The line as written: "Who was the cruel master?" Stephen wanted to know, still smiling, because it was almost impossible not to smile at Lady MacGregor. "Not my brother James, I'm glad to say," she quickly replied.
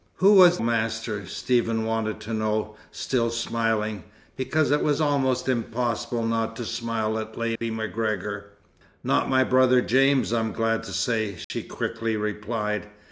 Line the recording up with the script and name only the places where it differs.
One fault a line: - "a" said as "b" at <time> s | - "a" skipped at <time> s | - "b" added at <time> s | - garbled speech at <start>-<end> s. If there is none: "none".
- "the cruel" skipped at 0.6 s